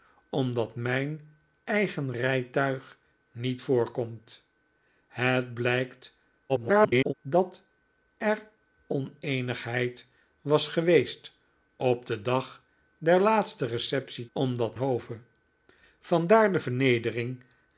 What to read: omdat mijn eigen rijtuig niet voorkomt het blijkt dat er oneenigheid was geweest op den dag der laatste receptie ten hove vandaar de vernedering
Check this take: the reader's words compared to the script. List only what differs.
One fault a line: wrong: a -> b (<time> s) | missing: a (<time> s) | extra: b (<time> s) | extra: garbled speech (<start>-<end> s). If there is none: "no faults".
extra: garbled speech (6.5-7.1 s)
wrong: ten -> omdat (14.3 s)